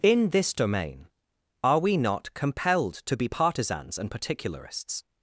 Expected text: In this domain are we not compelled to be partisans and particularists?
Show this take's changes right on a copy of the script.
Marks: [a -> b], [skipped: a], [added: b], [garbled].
In this domain are we not compelled to be partisans and particularists?